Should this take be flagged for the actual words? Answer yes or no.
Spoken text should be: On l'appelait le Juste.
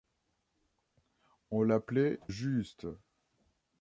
yes